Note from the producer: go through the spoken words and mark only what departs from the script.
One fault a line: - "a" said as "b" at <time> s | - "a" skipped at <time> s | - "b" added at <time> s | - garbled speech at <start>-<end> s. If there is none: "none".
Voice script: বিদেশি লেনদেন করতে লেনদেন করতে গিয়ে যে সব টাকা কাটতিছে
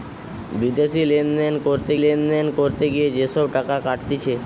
none